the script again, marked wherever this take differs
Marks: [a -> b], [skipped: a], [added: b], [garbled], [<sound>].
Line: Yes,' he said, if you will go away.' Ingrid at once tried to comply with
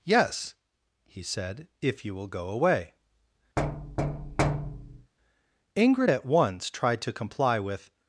Yes,' he said, if you will go away.' [thud] Ingrid at once tried to comply with